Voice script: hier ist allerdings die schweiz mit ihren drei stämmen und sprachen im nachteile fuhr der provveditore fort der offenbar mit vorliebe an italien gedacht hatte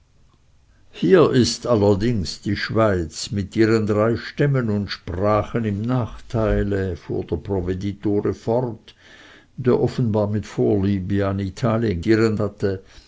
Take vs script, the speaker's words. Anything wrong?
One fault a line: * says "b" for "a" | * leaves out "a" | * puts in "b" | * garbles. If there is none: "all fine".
* says "ihren" for "gedacht"